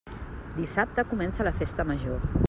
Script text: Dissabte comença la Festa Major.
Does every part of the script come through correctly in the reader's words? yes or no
yes